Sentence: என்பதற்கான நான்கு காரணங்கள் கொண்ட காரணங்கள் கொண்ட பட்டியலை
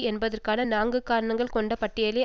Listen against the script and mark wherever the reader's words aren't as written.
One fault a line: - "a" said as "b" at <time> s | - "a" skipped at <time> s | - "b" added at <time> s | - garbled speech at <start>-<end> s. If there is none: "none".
- "காரணங்கள் கொண்ட" skipped at 1.7 s